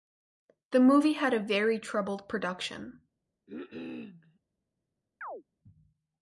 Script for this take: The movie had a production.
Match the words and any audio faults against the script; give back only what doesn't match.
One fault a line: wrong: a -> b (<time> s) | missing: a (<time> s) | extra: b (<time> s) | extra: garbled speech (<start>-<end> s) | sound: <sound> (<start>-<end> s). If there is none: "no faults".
extra: very troubled (1.4 s)
sound: cough (3.5-4.4 s)
sound: chirp (5.2-5.4 s)